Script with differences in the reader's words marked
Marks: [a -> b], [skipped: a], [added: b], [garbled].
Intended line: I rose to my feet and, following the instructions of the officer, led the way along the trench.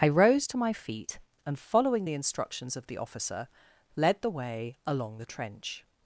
I rose to my feet and, following the instructions of the officer, led the way along the trench.